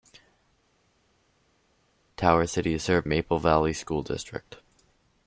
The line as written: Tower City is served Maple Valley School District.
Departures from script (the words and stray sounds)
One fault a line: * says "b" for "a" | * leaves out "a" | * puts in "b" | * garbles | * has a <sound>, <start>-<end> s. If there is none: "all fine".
all fine